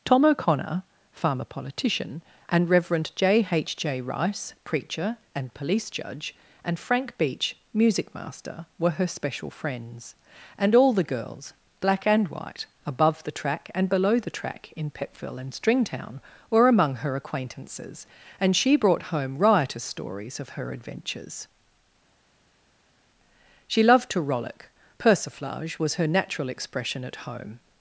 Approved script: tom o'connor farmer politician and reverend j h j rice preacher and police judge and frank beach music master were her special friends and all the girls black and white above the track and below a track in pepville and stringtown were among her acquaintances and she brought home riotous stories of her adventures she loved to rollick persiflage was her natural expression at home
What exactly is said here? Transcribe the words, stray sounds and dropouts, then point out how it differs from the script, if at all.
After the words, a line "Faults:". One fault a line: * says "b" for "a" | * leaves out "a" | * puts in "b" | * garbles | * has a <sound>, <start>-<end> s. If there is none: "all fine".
tom o'connor farmer politician and reverend j h j rice preacher and police judge and frank beach music master were her special friends and all the girls black and white above the track and below the track in pepville and stringtown were among her acquaintances and she brought home riotous stories of her adventures she loved to rollick persiflage was her natural expression at home
Faults:
* says "the" for "a"